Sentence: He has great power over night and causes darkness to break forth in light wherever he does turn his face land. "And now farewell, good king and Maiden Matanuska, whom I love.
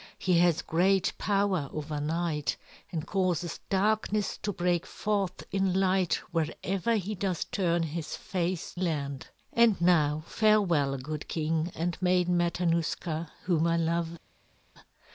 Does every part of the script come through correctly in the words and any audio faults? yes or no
yes